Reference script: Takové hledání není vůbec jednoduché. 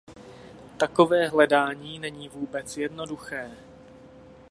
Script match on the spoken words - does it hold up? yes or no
yes